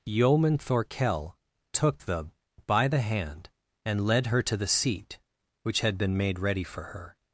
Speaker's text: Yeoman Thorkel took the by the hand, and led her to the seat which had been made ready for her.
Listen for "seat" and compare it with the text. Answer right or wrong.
right